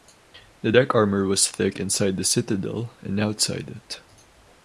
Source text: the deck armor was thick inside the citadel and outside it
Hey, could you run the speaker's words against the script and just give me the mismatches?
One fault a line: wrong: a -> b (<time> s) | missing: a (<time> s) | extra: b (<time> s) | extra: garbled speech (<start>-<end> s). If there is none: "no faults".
no faults